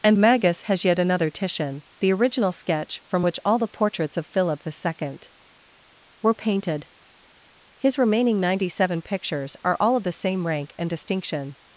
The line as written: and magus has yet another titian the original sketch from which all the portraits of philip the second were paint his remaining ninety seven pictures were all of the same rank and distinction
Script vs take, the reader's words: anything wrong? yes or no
yes